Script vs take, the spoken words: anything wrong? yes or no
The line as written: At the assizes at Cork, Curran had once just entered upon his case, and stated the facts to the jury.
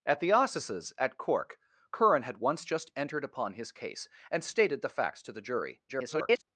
yes